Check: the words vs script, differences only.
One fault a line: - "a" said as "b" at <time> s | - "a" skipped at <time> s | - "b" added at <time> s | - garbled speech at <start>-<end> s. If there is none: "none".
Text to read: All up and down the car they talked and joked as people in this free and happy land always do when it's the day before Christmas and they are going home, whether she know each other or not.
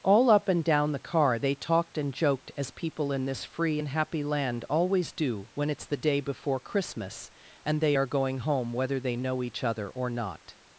- "she" said as "they" at 9.0 s